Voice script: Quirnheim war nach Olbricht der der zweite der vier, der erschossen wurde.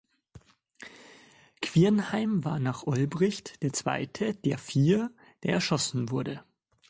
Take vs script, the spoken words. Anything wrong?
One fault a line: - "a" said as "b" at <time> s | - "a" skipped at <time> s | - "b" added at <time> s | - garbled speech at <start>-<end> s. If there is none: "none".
- "der" skipped at 3.7 s